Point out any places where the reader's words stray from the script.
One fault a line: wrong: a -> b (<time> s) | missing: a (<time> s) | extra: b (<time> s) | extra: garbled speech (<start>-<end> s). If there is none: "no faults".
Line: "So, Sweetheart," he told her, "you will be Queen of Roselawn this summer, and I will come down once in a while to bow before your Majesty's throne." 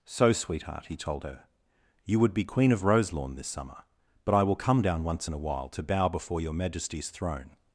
wrong: will -> would (2.2 s)
wrong: and -> but (4.2 s)